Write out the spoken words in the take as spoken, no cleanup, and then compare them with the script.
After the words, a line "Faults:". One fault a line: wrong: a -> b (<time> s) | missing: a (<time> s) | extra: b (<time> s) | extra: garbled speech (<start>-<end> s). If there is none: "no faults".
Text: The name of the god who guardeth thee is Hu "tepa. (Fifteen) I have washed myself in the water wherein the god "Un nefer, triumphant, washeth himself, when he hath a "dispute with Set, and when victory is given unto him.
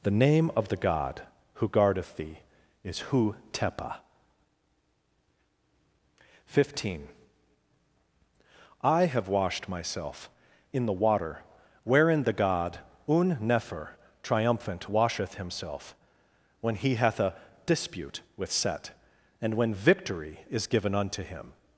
The name of the god who guardeth thee is Hu "tepa. (Fifteen) I have washed myself in the water wherein the god "Un nefer, triumphant, washeth himself, when he hath a "dispute with Set, and when victory is given unto him.
Faults:
no faults